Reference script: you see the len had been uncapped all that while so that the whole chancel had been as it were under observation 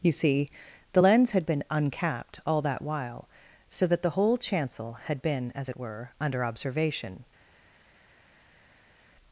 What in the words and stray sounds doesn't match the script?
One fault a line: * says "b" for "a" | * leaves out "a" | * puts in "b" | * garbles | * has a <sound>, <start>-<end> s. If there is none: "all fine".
* says "lens" for "len"